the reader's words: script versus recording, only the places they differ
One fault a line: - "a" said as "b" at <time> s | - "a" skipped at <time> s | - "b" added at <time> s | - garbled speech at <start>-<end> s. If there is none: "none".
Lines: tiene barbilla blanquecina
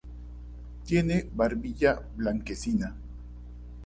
none